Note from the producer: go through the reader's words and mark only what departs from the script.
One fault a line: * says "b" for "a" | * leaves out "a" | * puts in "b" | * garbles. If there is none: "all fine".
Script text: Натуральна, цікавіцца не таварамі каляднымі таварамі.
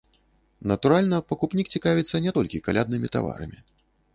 * puts in "пакупнік"
* says "толькі" for "таварамі"